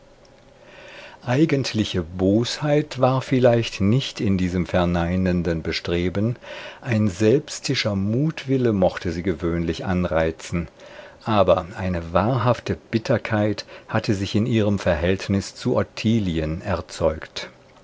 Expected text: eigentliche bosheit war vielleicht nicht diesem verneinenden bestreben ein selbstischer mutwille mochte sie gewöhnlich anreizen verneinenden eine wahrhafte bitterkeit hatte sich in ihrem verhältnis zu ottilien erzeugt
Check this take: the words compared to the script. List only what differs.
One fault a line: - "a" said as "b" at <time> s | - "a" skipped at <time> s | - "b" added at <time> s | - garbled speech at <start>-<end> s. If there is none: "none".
- "in" added at 4.2 s
- "verneinenden" said as "aber" at 11.3 s